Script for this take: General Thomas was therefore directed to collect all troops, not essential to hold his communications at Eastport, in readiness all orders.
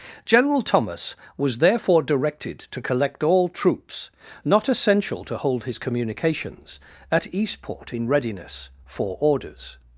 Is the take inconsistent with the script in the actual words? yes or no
yes